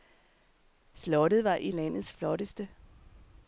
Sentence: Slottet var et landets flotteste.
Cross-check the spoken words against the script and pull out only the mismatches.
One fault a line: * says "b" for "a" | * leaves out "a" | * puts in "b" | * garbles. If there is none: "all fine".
all fine